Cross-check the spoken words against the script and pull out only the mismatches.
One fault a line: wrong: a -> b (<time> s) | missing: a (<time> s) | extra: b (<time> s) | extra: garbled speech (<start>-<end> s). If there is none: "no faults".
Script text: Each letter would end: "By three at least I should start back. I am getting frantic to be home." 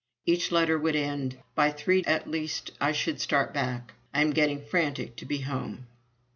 no faults